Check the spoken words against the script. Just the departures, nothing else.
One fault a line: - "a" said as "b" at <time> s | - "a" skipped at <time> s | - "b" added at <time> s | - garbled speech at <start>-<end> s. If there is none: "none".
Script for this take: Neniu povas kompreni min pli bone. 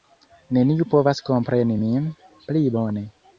none